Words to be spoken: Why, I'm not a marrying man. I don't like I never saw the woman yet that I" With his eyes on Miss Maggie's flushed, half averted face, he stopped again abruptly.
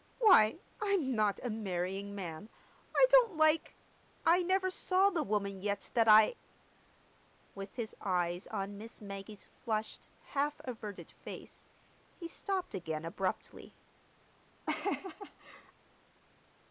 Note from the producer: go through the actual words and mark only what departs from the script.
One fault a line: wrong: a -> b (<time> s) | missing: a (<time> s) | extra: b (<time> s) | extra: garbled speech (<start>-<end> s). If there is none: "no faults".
no faults